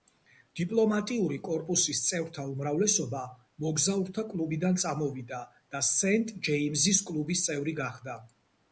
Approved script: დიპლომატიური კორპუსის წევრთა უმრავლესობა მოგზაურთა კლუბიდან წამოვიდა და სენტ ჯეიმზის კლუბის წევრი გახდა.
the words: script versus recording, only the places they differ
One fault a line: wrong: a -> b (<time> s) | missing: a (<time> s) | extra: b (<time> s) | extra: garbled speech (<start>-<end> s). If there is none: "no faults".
no faults